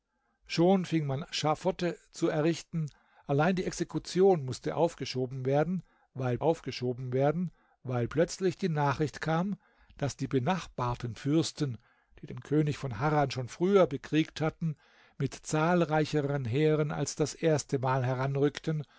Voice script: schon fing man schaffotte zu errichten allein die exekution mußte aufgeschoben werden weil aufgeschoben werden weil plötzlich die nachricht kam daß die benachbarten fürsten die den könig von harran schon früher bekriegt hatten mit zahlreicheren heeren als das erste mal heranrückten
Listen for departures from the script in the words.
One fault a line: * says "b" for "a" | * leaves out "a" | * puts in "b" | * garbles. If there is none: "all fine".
all fine